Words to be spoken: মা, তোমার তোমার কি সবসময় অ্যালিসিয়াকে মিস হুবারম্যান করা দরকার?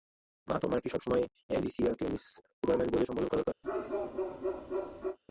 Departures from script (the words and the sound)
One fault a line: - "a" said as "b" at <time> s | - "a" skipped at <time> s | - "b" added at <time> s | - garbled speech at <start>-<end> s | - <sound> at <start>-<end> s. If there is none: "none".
- "তোমার" skipped at 0.8 s
- "বলে সম্বোধন" added at 2.9 s
- bark at 3.6-5.2 s